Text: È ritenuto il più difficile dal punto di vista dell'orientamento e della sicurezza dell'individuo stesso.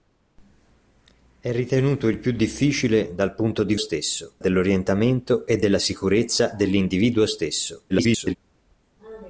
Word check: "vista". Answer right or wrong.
wrong